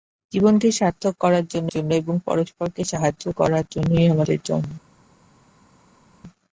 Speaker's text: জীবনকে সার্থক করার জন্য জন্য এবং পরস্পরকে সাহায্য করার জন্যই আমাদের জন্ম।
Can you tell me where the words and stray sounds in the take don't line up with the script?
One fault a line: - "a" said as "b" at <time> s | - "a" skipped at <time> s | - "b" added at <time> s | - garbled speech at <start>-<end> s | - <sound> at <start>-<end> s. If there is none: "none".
none